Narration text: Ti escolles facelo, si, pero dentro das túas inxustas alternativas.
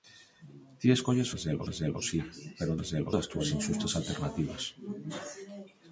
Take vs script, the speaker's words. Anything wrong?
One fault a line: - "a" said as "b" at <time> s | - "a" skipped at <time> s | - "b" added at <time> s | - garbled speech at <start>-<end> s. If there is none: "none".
- "facelo" added at 1.7 s
- "dentro" said as "facelo" at 2.8 s